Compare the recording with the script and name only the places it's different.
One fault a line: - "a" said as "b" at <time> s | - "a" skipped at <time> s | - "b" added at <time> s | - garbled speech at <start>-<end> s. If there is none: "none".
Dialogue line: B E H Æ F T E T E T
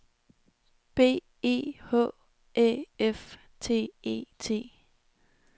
- "E T" skipped at 4.7 s